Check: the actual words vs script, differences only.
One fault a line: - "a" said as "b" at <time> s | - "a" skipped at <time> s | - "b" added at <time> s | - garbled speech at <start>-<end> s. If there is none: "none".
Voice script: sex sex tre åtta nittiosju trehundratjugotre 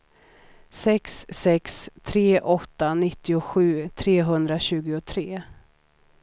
none